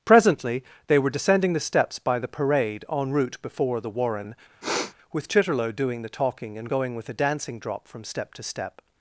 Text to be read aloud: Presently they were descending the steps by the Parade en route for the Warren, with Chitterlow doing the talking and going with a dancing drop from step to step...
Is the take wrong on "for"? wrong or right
wrong